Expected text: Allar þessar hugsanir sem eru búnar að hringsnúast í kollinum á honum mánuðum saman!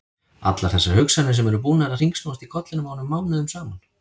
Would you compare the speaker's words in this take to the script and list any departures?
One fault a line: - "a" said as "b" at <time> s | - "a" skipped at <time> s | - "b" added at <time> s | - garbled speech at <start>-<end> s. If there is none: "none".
none